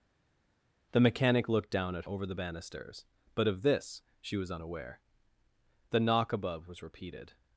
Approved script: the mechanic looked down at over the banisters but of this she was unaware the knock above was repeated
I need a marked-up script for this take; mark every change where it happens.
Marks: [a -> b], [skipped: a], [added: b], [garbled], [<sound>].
the mechanic looked down at over the banisters but of this she was unaware the knock above was repeated